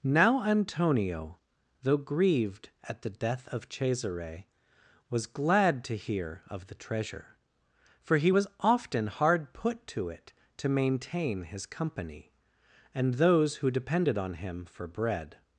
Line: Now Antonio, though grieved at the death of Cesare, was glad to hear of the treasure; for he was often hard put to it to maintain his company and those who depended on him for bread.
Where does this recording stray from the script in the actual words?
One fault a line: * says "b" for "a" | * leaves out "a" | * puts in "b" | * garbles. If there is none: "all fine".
all fine